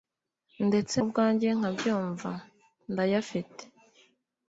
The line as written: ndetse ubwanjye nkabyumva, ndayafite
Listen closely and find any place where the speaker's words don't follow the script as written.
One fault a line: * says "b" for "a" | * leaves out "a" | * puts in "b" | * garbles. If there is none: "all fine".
all fine